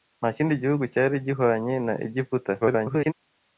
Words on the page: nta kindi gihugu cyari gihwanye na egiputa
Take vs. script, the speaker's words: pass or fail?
fail